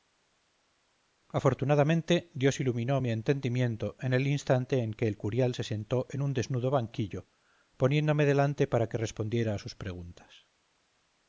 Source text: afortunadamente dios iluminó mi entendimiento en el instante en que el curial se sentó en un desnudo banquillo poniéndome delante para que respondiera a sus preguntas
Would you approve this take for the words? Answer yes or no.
yes